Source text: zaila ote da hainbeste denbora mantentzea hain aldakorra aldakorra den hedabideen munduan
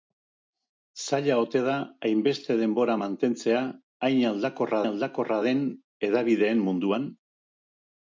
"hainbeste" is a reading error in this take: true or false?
false